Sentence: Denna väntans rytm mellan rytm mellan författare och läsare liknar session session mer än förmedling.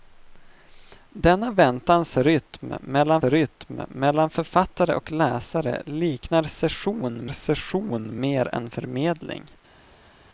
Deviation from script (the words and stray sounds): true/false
false